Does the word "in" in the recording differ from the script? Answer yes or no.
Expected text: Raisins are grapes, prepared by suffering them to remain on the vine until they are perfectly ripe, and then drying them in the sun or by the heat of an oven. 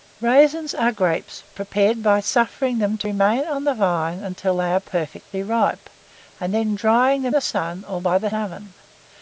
yes